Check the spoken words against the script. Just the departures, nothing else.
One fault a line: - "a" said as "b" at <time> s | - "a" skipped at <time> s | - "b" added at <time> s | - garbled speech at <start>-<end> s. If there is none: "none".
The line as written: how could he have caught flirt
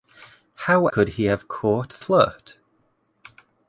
none